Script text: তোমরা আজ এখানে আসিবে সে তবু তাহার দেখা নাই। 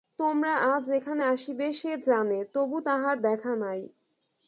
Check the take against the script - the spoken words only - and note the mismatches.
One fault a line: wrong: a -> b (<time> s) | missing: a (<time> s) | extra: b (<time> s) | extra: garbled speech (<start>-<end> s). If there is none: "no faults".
extra: জানে (2.0 s)